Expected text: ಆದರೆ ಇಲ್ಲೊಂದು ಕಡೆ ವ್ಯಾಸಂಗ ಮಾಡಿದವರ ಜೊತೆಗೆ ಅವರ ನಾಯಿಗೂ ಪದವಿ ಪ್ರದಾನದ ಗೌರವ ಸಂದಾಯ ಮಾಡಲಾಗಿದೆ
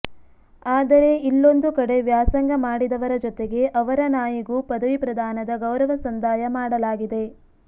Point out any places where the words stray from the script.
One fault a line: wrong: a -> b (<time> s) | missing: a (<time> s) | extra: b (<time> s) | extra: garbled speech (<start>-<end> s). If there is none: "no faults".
no faults